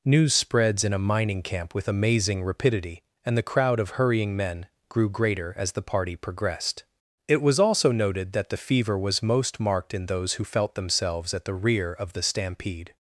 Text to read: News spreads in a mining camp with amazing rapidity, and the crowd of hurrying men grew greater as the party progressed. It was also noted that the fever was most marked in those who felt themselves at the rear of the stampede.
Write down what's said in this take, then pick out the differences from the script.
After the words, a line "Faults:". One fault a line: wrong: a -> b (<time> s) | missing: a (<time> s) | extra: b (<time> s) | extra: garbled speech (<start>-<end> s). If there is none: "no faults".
News spreads in a mining camp with amazing rapidity, and the crowd of hurrying men grew greater as the party progressed. It was also noted that the fever was most marked in those who felt themselves at the rear of the stampede.
Faults:
no faults